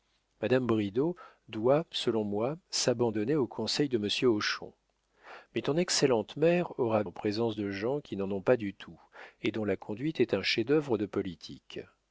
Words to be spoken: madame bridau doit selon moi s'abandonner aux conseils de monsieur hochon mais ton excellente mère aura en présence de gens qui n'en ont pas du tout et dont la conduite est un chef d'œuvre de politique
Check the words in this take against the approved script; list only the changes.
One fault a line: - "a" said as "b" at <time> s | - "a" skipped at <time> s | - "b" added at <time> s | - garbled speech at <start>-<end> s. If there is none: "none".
none